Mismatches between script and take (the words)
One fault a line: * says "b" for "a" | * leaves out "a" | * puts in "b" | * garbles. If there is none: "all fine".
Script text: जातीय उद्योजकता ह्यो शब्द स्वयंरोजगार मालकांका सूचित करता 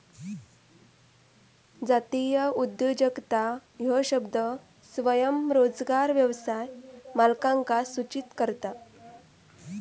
* puts in "व्यवसाय"